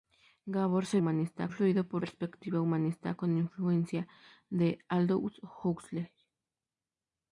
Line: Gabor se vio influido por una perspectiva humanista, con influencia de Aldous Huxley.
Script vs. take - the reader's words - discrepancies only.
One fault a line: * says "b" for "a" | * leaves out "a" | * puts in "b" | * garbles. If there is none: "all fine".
* says "humanista" for "vio"
* leaves out "una"